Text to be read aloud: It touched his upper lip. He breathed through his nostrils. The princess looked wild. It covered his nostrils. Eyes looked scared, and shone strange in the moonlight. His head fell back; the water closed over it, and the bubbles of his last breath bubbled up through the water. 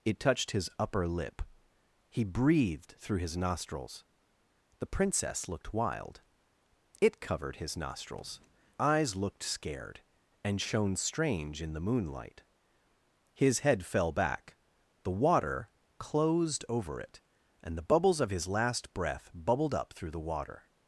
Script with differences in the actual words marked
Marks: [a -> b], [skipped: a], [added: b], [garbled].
It touched his upper lip. He breathed through his nostrils. The princess looked wild. It covered his nostrils. Eyes looked scared, and shone strange in the moonlight. His head fell back; the water closed over it, and the bubbles of his last breath bubbled up through the water.